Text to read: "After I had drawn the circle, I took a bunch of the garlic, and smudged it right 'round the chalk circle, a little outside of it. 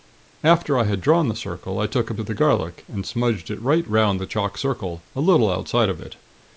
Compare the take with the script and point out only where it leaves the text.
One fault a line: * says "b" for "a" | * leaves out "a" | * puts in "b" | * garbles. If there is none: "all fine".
* leaves out "bunch"